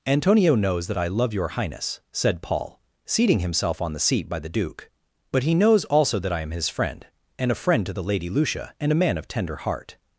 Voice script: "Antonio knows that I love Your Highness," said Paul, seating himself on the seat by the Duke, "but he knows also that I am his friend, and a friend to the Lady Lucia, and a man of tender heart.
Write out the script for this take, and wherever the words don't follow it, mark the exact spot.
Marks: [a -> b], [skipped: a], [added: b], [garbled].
"Antonio knows that I love Your Highness," said Paul, seating himself on the seat by the Duke, "but he knows also that I am his friend, and a friend to the Lady Lucia, and a man of tender heart.